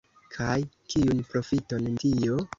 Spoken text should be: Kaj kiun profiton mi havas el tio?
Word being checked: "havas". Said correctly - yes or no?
no